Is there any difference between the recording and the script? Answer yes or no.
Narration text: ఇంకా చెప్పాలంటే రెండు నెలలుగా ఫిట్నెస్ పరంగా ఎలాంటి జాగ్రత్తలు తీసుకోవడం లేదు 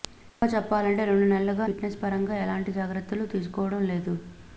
no